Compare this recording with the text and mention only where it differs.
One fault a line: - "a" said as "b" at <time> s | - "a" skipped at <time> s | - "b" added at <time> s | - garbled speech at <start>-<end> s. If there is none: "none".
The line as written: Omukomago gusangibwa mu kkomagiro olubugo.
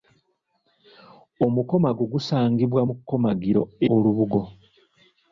none